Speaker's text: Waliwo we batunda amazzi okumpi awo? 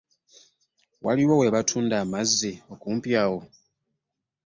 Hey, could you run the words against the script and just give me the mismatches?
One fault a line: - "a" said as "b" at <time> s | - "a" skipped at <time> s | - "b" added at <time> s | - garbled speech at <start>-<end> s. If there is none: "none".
none